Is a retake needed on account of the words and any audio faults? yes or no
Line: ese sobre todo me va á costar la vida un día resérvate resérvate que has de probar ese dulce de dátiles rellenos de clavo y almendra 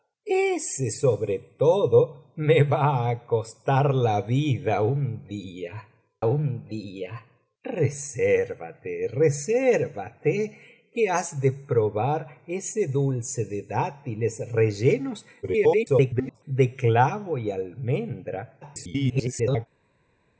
yes